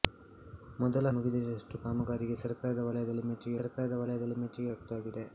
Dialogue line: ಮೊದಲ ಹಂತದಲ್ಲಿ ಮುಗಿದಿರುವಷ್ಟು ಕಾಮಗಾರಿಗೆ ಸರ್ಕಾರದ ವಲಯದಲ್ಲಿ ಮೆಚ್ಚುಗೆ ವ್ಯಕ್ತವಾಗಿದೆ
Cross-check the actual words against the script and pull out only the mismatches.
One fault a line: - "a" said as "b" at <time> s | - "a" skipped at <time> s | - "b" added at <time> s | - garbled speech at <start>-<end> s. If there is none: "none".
- "ಹಂತದಲ್ಲಿ" skipped at 1.1 s
- "ಸರ್ಕಾರದ ವಲಯದಲ್ಲಿ ಮೆಚ್ಚುಗೆ" added at 3.6 s